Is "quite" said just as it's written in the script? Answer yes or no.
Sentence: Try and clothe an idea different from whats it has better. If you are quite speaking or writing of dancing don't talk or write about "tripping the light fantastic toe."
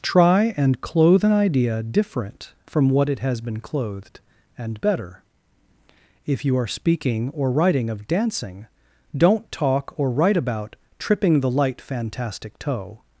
no